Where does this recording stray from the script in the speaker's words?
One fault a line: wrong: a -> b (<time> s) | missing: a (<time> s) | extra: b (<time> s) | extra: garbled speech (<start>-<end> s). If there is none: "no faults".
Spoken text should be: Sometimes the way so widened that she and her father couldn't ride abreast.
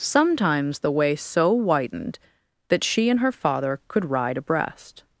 wrong: couldn't -> could (3.9 s)